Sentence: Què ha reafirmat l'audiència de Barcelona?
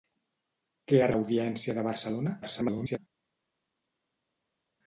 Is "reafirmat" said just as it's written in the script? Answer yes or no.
no